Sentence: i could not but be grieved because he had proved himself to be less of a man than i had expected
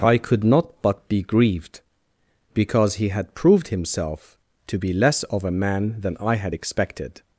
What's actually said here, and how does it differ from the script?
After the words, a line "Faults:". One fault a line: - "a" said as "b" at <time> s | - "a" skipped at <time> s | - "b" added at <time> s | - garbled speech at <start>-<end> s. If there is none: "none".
i could not but be grieved because he had proved himself to be less of a man than i had expected
Faults:
none